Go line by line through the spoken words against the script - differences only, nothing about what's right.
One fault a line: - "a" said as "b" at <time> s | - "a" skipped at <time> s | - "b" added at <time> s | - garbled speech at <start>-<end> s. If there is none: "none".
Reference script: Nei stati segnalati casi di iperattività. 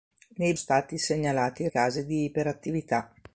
none